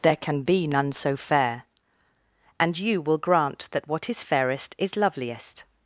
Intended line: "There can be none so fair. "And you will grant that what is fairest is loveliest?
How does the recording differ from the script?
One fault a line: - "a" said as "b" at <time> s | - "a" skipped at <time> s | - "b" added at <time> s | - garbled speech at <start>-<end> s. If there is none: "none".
none